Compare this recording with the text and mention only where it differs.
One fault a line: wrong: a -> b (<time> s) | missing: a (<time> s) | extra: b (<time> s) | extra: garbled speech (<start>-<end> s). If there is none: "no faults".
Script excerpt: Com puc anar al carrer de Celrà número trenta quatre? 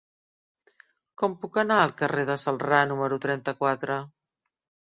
no faults